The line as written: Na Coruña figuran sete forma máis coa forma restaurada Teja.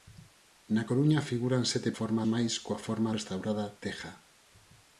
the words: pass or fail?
pass